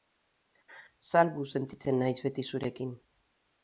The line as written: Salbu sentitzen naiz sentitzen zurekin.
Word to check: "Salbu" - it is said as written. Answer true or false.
true